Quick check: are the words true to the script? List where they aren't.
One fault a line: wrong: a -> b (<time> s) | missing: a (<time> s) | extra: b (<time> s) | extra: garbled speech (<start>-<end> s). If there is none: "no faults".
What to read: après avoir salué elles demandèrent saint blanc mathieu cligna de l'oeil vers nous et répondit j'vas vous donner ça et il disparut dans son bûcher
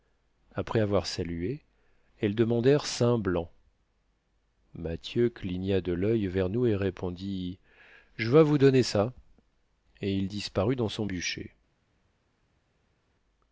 no faults